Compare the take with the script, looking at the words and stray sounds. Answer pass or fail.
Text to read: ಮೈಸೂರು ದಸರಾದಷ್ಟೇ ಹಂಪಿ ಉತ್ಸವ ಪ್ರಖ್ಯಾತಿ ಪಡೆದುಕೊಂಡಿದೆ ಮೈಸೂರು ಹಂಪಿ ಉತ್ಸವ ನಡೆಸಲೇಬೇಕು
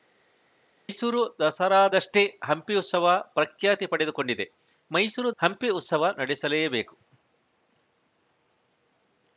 pass